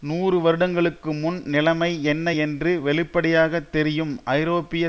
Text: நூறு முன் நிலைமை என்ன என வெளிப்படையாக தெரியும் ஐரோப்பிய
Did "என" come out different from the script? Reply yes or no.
yes